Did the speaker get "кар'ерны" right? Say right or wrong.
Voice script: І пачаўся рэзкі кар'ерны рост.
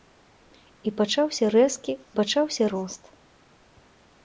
wrong